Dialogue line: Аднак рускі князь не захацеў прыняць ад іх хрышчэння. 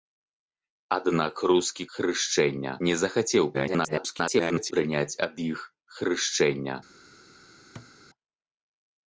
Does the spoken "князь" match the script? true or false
false